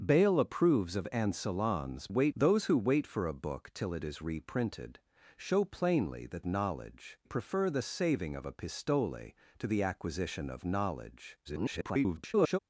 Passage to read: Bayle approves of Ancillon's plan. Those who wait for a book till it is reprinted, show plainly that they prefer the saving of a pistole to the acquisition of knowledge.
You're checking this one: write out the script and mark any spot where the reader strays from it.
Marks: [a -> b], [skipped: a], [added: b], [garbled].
Bayle approves of Ancillon's [plan. -> wait] Those who wait for a book till it is reprinted, show plainly that [they -> knowledge] prefer the saving of a pistole to the acquisition of knowledge. [garbled]